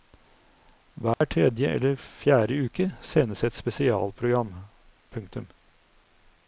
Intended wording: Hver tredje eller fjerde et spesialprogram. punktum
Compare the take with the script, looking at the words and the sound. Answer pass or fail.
fail